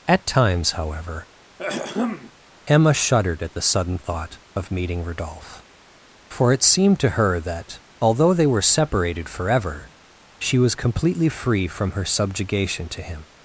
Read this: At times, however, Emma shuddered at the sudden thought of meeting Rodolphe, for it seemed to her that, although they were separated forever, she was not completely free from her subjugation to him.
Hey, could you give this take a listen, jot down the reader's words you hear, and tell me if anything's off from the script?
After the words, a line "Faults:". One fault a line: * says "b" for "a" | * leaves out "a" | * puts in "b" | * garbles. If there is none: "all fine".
At times, however, Emma shuddered at the sudden thought of meeting Rodolphe, for it seemed to her that, although they were separated forever, she was completely free from her subjugation to him.
Faults:
* leaves out "not"